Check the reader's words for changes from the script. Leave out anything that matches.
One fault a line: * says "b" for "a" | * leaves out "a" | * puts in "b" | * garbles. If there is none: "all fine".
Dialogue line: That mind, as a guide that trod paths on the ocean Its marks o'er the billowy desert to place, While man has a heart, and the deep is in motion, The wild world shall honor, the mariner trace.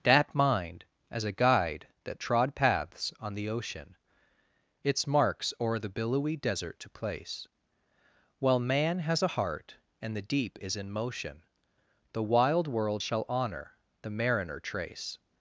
all fine